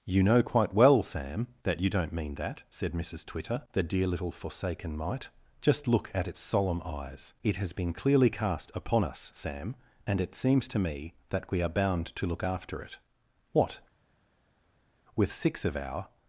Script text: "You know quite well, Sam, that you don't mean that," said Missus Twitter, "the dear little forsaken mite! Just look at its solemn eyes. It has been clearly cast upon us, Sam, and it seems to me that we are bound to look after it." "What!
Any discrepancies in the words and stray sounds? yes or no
yes